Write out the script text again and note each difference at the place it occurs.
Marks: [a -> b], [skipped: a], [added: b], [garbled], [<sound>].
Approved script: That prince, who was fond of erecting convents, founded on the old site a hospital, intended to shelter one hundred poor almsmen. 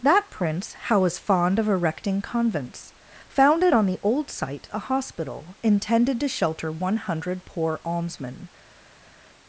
That prince, [who -> how] was fond of erecting convents, founded on the old site a hospital, intended to shelter one hundred poor almsmen.